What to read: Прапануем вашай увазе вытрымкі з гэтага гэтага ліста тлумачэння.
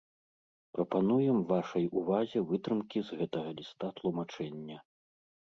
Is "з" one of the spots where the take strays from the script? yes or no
no